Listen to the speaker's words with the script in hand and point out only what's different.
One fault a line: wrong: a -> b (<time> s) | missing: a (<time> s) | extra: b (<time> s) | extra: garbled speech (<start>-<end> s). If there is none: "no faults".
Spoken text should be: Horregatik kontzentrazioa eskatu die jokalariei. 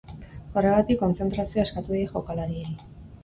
no faults